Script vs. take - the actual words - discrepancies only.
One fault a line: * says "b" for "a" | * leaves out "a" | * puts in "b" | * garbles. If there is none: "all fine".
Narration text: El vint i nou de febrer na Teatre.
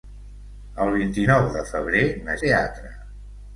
all fine